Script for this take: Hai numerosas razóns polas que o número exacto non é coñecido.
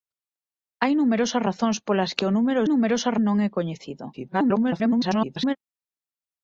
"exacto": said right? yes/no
no